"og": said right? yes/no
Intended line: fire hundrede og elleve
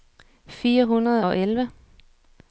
yes